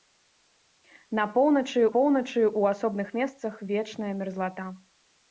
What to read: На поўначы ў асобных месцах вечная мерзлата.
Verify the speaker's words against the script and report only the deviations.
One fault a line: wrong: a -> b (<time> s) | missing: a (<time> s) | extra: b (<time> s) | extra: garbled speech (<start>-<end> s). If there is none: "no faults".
extra: поўначы (1.9 s)